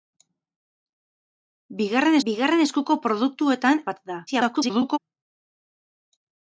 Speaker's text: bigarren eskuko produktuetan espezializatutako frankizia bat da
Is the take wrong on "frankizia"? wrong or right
wrong